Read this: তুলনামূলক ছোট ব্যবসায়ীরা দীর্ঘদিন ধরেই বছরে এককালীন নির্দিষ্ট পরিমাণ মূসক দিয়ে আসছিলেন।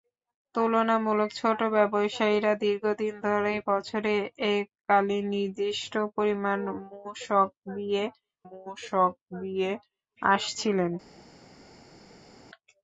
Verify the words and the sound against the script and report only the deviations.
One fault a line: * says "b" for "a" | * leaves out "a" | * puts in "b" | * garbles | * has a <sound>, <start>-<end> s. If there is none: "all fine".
* puts in "মূসক দিয়ে"